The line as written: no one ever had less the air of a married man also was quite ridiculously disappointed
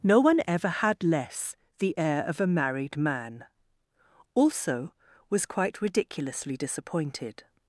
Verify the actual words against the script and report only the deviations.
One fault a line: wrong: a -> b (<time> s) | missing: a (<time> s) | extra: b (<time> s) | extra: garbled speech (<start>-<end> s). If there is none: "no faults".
no faults